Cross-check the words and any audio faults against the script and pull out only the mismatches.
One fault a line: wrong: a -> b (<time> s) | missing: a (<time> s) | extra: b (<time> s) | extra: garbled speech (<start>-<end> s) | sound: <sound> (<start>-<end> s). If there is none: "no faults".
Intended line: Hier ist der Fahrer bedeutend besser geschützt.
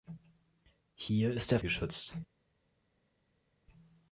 missing: Fahrer bedeutend besser (1.6 s)